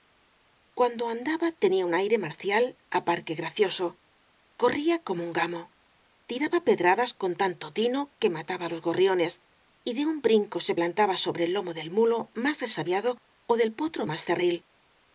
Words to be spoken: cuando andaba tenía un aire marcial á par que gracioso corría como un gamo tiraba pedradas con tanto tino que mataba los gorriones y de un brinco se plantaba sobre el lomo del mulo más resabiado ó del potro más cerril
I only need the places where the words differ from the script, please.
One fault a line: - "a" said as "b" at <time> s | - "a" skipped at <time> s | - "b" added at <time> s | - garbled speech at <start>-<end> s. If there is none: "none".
none